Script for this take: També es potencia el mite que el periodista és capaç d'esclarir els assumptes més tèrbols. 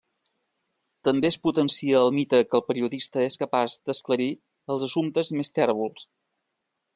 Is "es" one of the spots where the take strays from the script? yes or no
no